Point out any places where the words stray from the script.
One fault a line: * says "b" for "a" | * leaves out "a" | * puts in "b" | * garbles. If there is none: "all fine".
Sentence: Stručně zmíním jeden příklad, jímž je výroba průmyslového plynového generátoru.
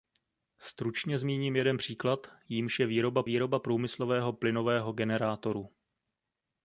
* puts in "výroba"